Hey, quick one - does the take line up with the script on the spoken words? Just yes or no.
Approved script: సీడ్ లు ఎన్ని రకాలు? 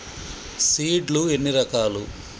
yes